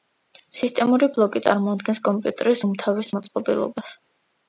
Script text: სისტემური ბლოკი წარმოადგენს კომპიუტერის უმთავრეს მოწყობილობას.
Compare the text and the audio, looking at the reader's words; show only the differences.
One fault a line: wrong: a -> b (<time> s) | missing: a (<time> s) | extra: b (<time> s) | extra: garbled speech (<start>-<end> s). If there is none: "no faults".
no faults